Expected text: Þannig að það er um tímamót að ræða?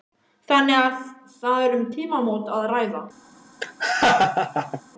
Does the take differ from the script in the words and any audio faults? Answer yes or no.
yes